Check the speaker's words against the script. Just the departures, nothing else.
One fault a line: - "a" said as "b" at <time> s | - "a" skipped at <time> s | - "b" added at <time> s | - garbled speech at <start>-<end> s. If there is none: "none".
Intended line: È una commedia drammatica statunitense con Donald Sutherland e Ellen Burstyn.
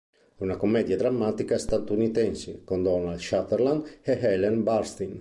none